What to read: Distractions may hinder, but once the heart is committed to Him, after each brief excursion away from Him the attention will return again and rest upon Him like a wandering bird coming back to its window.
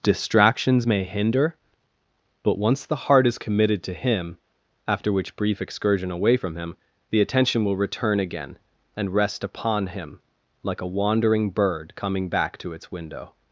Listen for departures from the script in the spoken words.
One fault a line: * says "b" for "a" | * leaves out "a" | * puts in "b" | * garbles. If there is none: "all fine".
* says "which" for "each"